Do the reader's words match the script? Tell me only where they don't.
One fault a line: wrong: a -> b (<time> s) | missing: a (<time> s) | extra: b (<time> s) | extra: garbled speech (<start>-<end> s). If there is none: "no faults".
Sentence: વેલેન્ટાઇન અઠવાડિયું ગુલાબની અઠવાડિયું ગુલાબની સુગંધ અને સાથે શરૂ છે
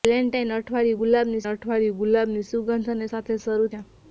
no faults